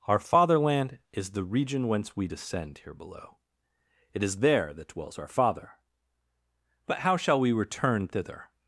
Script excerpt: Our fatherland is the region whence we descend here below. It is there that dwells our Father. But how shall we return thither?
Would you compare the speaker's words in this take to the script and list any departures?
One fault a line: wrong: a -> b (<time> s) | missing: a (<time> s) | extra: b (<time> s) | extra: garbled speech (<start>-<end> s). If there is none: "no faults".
no faults